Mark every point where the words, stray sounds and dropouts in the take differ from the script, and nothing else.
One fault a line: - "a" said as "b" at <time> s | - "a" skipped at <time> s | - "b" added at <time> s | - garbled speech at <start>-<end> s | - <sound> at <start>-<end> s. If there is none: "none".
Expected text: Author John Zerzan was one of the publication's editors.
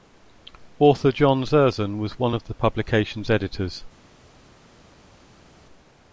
none